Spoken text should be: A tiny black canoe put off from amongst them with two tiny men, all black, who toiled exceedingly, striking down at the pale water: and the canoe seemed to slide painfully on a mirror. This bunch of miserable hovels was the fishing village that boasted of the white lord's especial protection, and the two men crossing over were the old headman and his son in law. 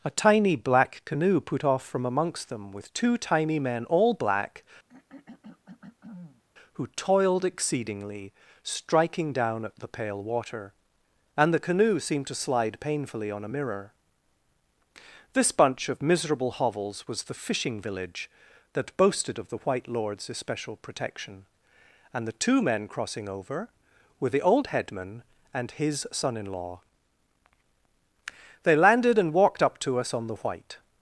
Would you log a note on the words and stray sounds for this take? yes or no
yes